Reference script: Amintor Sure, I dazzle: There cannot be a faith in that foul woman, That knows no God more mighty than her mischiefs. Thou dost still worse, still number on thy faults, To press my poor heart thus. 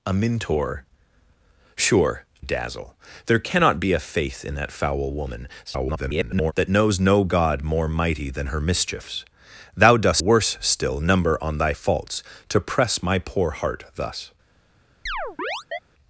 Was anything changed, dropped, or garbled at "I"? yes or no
yes